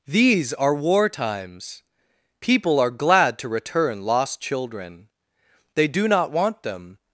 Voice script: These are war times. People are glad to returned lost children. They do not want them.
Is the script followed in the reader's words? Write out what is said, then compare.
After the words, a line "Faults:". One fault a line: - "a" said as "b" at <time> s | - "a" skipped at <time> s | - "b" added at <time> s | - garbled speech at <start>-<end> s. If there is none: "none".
These are war times. People are glad to return lost children. They do not want them.
Faults:
- "returned" said as "return" at 3.5 s